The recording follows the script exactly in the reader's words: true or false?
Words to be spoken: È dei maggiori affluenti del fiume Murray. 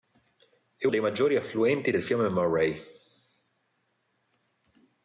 true